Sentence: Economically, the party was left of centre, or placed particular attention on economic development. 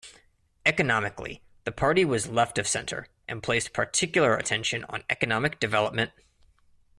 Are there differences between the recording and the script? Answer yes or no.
yes